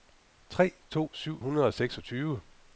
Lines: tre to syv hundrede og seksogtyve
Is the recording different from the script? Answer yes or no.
no